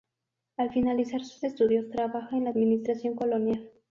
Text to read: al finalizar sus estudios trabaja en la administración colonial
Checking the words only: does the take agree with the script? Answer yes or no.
yes